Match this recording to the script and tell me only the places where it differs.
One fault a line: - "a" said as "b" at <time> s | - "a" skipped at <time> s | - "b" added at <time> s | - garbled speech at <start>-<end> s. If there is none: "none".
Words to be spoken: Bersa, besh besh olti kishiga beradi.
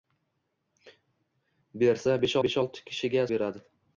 none